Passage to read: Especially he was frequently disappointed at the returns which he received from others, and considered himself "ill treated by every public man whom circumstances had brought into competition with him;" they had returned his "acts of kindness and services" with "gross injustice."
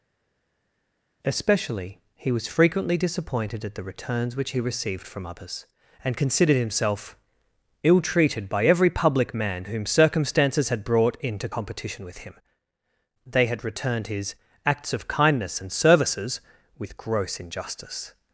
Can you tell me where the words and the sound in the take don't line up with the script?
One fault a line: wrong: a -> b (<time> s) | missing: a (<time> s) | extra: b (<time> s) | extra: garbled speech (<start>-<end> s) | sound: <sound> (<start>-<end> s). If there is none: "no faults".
no faults